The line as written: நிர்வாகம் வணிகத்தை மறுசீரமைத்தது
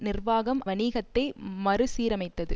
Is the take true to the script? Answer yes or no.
yes